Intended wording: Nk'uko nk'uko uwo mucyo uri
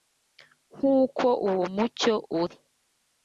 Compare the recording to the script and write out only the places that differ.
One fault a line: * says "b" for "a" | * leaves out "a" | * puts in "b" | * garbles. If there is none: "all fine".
* leaves out "nk'uko"